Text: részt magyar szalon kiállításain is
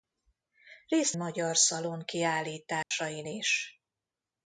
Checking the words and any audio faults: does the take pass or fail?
fail